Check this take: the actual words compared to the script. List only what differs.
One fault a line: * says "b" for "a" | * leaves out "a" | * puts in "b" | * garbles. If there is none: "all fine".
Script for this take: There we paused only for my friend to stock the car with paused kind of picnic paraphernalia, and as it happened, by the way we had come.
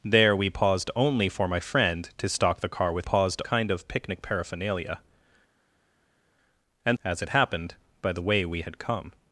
all fine